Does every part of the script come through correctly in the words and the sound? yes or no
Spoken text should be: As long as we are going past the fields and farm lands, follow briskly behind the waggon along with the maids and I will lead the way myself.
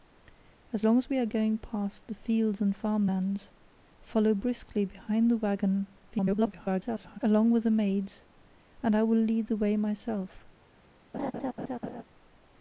no